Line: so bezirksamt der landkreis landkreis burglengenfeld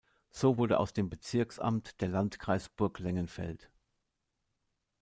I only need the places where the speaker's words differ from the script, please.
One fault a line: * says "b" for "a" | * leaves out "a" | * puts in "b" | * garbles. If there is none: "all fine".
* puts in "wurde aus dem"
* leaves out "landkreis"